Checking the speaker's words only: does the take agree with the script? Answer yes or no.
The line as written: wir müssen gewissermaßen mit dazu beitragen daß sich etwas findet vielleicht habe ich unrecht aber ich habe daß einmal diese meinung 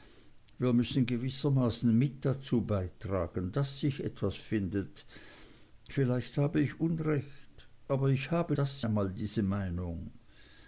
yes